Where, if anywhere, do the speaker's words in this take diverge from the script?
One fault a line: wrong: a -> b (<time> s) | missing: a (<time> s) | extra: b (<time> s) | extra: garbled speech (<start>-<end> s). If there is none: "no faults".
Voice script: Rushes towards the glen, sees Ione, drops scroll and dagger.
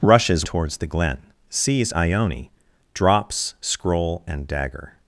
no faults